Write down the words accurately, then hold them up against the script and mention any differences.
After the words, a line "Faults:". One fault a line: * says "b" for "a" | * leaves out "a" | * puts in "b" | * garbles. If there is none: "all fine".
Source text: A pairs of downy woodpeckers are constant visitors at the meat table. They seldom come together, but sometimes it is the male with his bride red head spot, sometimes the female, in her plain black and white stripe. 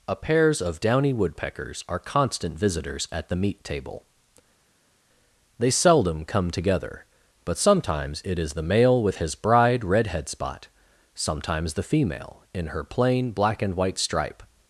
A pairs of downy woodpeckers are constant visitors at the meat table. They seldom come together, but sometimes it is the male with his bride red head spot, sometimes the female, in her plain black and white stripe.
Faults:
all fine